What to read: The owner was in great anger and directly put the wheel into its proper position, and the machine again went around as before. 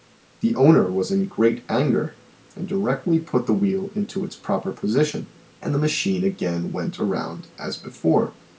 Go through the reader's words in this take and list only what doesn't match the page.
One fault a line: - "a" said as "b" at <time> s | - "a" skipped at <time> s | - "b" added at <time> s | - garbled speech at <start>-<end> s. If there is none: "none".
none